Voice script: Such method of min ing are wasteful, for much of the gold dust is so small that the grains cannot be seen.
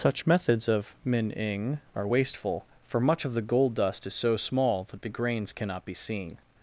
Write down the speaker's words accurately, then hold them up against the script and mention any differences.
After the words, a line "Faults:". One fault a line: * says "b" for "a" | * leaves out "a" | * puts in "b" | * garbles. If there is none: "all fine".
Such methods of min ing are wasteful, for much of the gold dust is so small that the grains cannot be seen.
Faults:
* says "methods" for "method"